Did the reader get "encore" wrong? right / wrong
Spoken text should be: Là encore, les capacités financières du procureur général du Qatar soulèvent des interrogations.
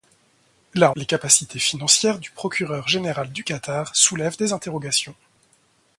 wrong